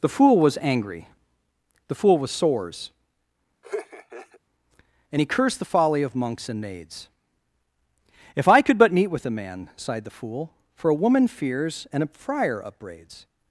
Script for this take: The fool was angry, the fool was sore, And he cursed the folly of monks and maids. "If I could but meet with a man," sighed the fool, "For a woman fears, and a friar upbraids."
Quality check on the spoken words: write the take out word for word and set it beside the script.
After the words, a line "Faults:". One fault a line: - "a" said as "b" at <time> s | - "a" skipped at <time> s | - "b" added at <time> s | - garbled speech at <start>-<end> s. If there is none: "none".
The fool was angry, the fool was sores, And he cursed the folly of monks and maids. "If I could but meet with a man," sighed the fool, "For a woman fears, and a friar upbraids."
Faults:
- "sore" said as "sores" at 2.3 s